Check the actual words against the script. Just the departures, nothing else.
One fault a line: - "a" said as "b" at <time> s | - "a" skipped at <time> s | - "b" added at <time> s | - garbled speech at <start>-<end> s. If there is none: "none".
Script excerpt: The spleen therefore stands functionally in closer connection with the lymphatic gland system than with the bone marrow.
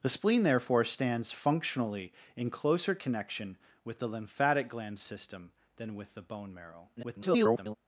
- garbled speech at 7.0-7.7 s